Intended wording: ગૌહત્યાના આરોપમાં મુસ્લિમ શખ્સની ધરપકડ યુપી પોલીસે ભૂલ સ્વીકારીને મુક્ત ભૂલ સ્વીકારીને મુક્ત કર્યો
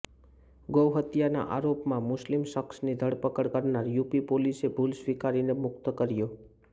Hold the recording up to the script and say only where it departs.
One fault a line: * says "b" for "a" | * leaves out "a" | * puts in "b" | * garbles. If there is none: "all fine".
* puts in "કરનાર"
* leaves out "ભૂલ સ્વીકારીને મુક્ત"